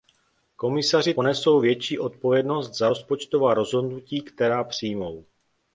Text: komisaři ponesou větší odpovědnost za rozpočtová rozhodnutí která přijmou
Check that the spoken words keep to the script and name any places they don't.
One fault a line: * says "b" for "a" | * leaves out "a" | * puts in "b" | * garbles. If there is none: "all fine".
all fine